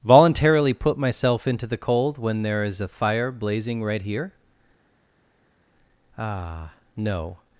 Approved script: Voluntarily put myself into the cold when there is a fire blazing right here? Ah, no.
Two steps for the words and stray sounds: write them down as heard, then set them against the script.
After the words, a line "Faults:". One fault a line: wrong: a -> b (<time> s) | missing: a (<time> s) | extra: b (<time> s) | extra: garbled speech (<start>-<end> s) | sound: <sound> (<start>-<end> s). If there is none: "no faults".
Voluntarily put myself into the cold when there is a fire blazing right here? Ah, no.
Faults:
no faults